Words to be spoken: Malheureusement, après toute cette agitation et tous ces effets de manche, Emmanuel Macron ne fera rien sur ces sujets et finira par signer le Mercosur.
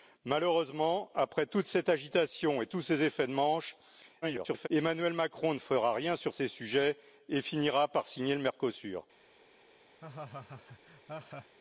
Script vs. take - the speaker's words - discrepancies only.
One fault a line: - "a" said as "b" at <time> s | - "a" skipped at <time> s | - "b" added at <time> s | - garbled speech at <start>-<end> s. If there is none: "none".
- garbled speech at 4.2-4.7 s